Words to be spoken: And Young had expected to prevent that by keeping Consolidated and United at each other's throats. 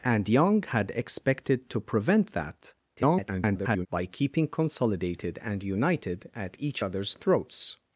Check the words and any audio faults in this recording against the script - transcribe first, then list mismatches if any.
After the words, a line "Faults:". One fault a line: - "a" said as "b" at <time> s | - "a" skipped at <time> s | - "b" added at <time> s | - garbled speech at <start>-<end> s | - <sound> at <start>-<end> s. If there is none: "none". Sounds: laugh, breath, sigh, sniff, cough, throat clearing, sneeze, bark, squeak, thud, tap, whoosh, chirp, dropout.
And Young had expected to prevent that [garbled] by keeping Consolidated and United at each other's throats.
Faults:
- garbled speech at 3.0-3.9 s